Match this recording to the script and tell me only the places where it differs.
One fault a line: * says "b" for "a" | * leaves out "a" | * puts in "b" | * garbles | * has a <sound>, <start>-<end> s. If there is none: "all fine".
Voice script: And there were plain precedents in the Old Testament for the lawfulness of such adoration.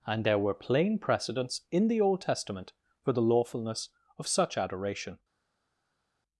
all fine